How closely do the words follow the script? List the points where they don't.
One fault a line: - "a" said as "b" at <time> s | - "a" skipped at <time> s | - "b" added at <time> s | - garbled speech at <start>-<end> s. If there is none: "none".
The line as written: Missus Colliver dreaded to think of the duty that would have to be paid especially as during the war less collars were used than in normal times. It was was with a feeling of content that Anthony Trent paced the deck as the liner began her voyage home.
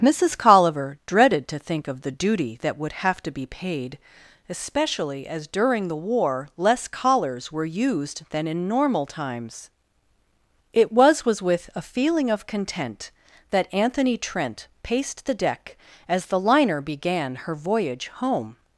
none